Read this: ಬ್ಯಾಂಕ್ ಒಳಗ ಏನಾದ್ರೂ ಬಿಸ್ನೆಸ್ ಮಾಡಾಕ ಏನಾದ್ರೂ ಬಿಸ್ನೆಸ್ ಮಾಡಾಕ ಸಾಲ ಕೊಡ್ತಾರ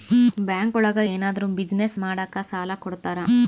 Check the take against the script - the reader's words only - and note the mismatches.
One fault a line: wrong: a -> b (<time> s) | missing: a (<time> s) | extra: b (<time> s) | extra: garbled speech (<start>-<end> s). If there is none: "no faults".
missing: ಏನಾದ್ರೂ ಬಿಸ್ನೆಸ್ ಮಾಡಾಕ (2.4 s)